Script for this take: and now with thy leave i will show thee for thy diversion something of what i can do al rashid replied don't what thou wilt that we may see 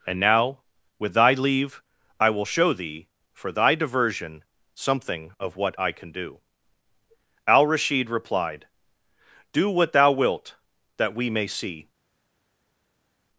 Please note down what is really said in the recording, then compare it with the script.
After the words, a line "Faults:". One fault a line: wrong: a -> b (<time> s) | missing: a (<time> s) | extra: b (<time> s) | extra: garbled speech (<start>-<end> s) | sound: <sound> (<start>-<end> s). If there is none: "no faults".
and now with thy leave i will show thee for thy diversion something of what i can do al rashid replied do what thou wilt that we may see
Faults:
wrong: don't -> do (9.5 s)